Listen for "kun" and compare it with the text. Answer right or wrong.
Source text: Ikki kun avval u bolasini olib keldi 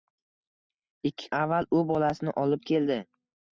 wrong